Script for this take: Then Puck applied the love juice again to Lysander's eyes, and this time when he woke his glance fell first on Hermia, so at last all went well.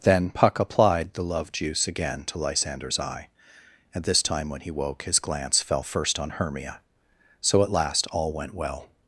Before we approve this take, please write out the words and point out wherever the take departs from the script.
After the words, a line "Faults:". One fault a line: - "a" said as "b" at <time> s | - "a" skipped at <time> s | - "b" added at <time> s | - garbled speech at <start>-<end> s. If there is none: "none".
Then Puck applied the love juice again to Lysander's eye, and this time when he woke his glance fell first on Hermia, so at last all went well.
Faults:
- "eyes" said as "eye" at 3.0 s